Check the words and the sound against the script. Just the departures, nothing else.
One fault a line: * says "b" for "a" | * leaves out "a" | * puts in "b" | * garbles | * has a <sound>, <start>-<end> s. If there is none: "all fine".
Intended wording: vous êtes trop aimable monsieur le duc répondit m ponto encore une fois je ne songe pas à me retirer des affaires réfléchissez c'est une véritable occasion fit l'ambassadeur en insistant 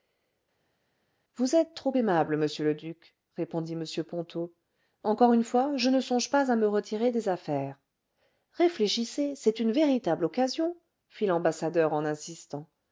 all fine